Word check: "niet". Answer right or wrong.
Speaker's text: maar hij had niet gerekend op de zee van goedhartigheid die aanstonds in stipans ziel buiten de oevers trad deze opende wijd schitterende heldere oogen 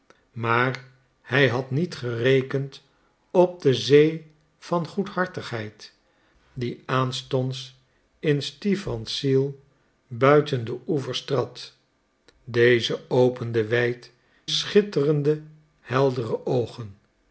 right